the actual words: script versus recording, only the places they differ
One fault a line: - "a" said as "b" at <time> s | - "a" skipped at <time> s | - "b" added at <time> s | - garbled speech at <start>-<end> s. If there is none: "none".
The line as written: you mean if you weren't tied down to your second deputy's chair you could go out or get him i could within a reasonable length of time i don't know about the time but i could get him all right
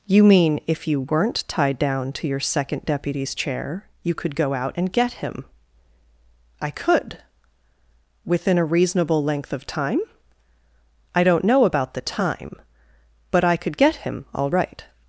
- "or" said as "and" at 4.8 s